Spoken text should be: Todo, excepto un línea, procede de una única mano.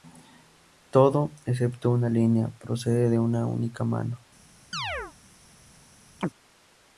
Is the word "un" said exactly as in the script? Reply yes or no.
no